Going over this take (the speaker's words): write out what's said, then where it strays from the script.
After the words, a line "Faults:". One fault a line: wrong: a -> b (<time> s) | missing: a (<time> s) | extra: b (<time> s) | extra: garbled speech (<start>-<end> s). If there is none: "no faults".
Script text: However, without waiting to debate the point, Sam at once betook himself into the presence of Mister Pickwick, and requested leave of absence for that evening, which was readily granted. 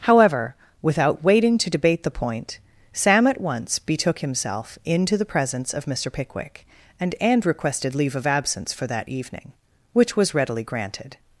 However, without waiting to debate the point, Sam at once betook himself into the presence of Mister Pickwick, and and requested leave of absence for that evening, which was readily granted.
Faults:
extra: and (7.2 s)